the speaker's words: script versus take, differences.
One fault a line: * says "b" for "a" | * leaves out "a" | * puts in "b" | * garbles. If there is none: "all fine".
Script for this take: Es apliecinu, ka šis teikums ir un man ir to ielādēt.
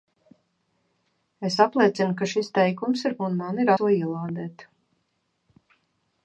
all fine